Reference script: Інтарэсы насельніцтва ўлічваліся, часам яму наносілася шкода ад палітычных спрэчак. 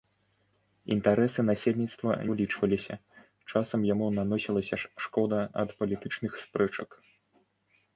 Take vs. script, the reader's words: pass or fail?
pass